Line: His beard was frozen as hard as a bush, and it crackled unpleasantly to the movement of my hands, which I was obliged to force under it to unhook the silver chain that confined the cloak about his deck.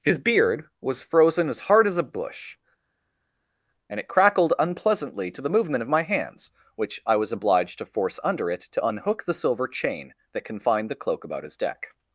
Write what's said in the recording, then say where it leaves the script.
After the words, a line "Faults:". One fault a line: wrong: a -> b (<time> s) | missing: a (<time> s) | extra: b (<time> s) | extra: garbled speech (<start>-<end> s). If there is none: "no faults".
His beard was frozen as hard as a bush, and it crackled unpleasantly to the movement of my hands, which I was obliged to force under it to unhook the silver chain that confined the cloak about his deck.
Faults:
no faults